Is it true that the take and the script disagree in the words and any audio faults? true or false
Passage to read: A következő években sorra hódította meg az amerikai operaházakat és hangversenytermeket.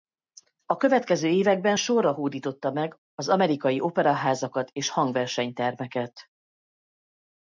false